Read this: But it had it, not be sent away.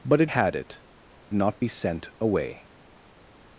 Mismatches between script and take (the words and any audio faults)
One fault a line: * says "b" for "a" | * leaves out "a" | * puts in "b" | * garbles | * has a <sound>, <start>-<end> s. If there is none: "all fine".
all fine